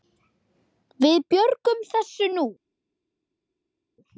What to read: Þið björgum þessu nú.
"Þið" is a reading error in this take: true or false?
true